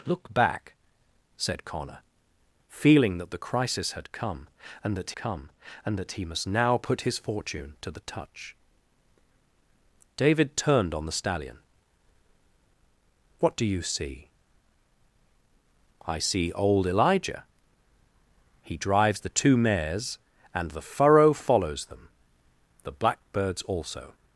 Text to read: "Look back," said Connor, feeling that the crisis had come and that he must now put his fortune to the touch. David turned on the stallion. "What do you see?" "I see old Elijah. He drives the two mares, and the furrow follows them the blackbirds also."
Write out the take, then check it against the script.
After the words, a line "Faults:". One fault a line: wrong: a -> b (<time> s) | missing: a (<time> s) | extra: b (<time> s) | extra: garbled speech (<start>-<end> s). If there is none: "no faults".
"Look back," said Connor, feeling that the crisis had come and that come and that he must now put his fortune to the touch. David turned on the stallion. "What do you see?" "I see old Elijah. He drives the two mares, and the furrow follows them the blackbirds also."
Faults:
extra: come and that (5.1 s)